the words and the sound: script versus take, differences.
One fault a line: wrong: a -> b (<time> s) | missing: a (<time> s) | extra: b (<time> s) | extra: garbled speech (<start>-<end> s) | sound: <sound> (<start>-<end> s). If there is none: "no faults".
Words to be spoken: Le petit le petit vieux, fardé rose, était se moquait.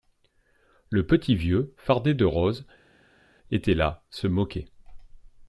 missing: le petit (1.4 s)
extra: de (2.1 s)
extra: là (3.7 s)